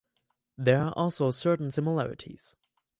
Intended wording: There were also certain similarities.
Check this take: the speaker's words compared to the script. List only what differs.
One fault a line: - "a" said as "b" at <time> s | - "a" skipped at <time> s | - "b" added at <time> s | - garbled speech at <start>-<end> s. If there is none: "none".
- "were" said as "are" at 0.8 s